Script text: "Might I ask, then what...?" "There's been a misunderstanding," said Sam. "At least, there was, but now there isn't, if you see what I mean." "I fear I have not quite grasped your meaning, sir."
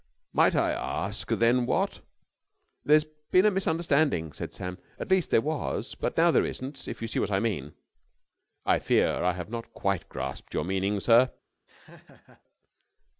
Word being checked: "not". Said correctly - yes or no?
yes